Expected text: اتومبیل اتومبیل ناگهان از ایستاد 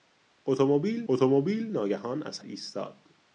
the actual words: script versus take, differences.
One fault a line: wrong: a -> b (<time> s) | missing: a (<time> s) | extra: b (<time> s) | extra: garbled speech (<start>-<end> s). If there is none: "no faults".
no faults